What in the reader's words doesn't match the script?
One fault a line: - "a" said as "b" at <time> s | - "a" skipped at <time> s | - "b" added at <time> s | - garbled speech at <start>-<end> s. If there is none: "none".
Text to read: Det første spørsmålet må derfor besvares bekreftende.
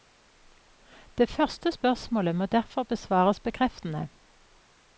none